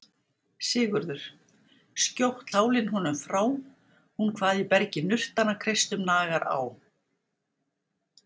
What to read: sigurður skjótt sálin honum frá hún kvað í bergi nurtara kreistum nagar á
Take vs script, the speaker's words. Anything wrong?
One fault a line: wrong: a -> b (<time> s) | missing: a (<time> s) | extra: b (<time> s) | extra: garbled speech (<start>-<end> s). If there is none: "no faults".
no faults